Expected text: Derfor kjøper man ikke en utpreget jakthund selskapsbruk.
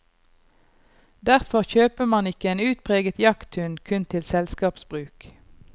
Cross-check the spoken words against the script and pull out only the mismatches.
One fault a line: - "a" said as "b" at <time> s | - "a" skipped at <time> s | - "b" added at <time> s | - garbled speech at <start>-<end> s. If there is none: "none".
- "kun til" added at 3.9 s